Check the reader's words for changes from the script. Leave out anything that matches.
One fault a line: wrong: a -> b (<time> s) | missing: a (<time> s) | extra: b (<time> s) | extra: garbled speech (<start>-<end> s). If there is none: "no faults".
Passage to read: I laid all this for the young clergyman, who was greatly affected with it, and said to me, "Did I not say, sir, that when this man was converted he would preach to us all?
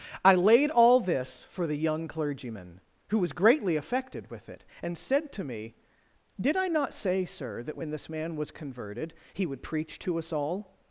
no faults